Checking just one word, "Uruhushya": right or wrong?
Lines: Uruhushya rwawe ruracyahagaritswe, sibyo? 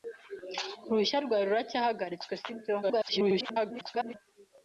right